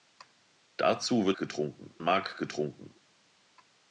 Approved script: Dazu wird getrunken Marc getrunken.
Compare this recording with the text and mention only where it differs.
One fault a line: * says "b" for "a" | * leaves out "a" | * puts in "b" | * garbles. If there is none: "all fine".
all fine